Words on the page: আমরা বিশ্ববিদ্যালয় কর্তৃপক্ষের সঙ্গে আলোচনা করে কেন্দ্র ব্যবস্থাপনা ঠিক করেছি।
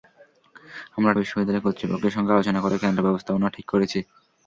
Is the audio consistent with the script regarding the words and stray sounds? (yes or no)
yes